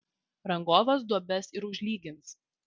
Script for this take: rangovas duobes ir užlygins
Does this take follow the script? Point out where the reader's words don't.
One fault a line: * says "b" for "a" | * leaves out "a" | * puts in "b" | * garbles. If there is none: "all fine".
all fine